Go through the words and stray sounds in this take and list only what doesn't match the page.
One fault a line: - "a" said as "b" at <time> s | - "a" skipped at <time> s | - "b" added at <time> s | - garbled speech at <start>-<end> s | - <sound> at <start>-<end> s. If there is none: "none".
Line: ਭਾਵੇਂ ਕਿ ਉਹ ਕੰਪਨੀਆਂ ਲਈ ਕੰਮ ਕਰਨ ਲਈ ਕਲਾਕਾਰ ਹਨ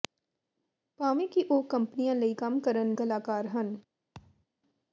- "ਲਈ" skipped at 2.9 s
- thud at 4.1-4.5 s